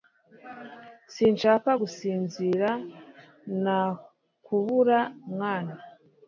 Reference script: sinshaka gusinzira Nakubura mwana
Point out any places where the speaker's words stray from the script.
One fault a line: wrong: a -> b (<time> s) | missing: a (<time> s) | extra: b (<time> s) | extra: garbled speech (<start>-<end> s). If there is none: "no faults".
no faults